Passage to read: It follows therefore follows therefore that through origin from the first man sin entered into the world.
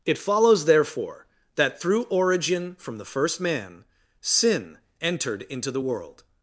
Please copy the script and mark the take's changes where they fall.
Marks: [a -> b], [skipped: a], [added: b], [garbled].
It follows therefore [skipped: follows therefore] that through origin from the first man sin entered into the world.